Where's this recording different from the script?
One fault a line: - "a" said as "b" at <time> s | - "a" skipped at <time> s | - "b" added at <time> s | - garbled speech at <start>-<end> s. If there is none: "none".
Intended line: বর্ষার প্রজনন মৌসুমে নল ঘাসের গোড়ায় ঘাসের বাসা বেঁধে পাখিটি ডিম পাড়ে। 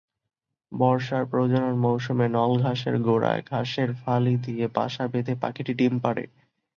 - "ফালি দিয়ে" added at 4.0 s